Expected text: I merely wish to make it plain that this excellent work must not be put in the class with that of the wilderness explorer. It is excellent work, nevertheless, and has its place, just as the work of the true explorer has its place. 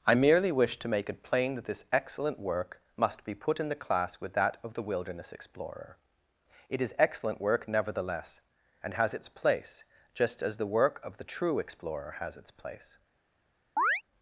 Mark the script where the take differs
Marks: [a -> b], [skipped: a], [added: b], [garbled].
I merely wish to make it plain that this excellent work must [skipped: not] be put in the class with that of the wilderness explorer. It is excellent work, nevertheless, and has its place, just as the work of the true explorer has its place.